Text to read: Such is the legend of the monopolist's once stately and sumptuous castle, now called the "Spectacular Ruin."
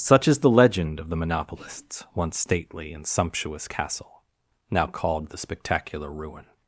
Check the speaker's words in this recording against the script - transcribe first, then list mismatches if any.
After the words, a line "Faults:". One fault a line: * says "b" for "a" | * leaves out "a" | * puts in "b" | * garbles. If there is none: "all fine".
Such is the legend of the monopolist's once stately and sumptuous castle, now called the "Spectacular Ruin."
Faults:
all fine